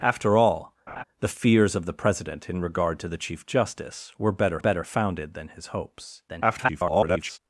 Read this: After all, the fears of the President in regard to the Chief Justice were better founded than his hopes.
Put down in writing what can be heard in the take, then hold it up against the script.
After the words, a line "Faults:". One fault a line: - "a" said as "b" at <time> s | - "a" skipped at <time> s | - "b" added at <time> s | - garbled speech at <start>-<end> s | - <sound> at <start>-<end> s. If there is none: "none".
After all, the fears of the President in regard to the Chief Justice were better better founded than his hopes. [garbled]
Faults:
- laugh at 0.9-1.0 s
- "better" added at 4.6 s
- garbled speech at 6.3-7.4 s